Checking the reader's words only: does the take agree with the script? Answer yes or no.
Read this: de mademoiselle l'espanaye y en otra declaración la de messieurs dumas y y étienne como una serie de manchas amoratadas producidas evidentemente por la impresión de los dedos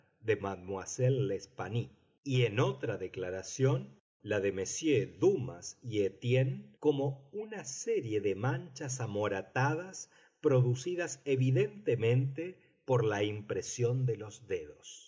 no